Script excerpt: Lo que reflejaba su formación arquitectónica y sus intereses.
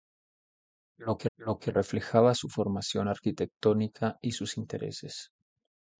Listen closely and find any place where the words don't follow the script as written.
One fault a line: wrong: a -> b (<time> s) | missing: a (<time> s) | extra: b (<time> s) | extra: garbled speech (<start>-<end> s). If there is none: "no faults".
extra: lo que (1.4 s)